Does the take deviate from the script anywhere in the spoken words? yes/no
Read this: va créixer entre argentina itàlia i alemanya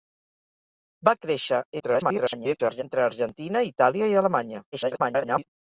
yes